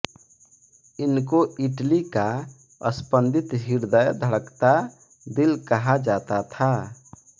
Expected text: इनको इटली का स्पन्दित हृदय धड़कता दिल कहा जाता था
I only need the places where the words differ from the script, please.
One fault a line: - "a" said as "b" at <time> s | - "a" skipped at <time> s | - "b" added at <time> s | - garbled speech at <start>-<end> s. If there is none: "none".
none